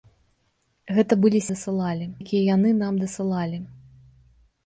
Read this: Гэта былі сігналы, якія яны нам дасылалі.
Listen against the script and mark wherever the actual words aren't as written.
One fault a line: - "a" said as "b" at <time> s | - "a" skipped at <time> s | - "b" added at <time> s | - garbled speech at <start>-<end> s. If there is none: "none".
- "сігналы" said as "дасылалі" at 1.5 s